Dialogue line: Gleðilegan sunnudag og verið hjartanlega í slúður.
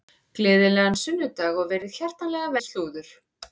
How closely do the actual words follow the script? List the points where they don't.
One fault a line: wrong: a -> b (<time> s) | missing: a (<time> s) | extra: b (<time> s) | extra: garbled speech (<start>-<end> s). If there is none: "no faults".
no faults